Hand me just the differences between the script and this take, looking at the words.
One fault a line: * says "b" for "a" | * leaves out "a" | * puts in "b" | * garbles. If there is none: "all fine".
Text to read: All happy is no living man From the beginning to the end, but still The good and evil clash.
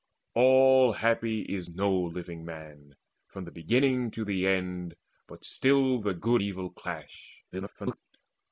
* leaves out "and"
* garbles